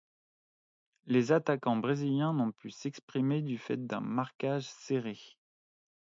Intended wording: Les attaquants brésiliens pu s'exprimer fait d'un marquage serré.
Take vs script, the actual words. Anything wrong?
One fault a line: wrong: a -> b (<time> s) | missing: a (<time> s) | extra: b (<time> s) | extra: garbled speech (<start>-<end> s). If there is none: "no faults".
extra: n'ont (2.3 s)
extra: du (3.4 s)